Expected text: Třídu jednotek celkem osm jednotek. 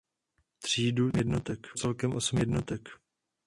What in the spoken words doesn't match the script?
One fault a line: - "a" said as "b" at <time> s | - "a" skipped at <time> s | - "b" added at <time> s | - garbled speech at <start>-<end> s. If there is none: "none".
none